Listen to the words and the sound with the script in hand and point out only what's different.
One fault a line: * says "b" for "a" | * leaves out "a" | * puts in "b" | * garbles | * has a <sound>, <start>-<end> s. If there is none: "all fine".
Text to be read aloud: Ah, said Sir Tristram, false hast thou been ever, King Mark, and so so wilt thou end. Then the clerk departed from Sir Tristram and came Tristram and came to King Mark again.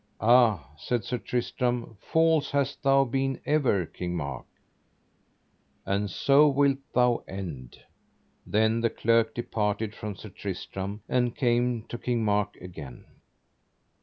* leaves out "so"
* leaves out "Tristram and came"